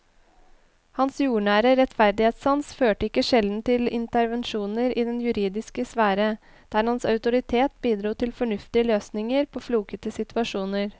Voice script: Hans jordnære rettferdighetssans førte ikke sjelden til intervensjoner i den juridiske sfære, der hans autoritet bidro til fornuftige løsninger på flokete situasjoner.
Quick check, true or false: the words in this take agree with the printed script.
true